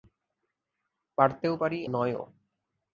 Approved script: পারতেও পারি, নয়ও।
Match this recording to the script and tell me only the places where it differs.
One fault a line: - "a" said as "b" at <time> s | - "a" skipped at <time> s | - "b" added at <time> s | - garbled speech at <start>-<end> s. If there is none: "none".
none